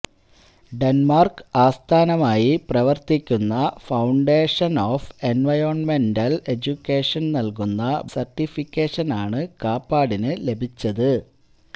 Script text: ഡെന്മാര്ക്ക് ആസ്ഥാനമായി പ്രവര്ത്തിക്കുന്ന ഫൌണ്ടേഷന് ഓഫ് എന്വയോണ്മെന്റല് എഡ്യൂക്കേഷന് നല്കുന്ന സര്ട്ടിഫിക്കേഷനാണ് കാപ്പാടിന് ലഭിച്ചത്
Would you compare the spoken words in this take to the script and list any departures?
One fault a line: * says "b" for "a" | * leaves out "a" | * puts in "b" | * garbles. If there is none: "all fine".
all fine